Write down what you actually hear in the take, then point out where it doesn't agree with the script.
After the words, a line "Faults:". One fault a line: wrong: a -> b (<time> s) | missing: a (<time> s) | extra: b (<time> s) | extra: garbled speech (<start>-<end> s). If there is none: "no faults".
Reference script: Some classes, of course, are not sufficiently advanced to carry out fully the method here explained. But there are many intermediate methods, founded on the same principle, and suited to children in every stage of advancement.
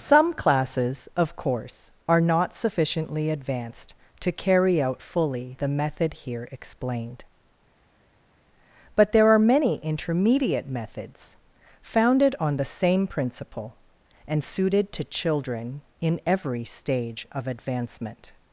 Some classes, of course, are not sufficiently advanced to carry out fully the method here explained. But there are many intermediate methods, founded on the same principle, and suited to children in every stage of advancement.
Faults:
no faults